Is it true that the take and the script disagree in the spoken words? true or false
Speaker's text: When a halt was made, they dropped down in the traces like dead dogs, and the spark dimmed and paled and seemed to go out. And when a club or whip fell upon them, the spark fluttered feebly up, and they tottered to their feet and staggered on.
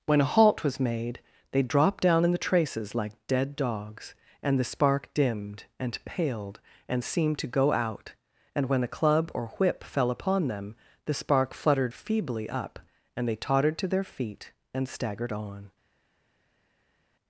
false